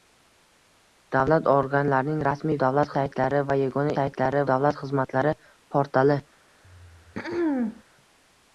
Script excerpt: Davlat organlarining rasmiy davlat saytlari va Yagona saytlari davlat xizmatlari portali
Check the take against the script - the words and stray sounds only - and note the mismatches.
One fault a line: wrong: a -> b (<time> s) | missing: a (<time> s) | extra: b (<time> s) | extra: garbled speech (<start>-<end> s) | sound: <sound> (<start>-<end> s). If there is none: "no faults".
sound: throat clearing (6.6-7.8 s)